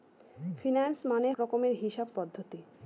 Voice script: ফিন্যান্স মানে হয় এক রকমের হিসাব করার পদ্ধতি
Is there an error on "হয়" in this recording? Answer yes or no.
yes